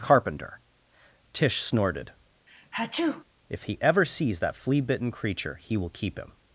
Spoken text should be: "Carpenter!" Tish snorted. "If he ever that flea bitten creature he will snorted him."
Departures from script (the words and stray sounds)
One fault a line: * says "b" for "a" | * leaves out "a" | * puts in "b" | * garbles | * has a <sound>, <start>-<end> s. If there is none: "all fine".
* has a sneeze, 2.5-3.2 s
* puts in "sees"
* says "keep" for "snorted"